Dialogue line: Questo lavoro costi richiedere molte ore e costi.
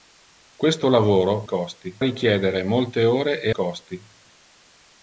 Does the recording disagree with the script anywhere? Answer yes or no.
no